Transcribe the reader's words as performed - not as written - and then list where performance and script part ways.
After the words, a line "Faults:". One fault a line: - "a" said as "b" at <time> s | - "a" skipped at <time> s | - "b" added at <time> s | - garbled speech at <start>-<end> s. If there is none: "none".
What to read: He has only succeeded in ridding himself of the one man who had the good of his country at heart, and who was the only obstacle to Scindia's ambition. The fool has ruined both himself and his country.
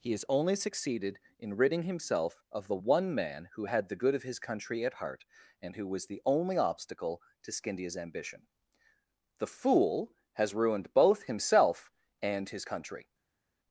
He has only succeeded in ridding himself of the one man who had the good of his country at heart, and who was the only obstacle to Scindia's ambition. The fool has ruined both himself and his country.
Faults:
none